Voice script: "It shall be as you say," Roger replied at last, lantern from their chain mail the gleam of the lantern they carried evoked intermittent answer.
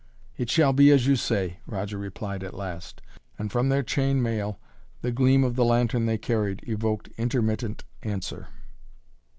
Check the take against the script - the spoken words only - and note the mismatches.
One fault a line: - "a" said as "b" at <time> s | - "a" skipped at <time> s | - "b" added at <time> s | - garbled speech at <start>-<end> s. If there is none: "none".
- "lantern" said as "and" at 3.4 s